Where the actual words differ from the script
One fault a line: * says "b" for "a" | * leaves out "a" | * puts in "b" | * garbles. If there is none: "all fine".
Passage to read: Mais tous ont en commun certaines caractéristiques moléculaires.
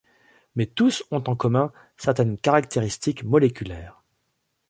all fine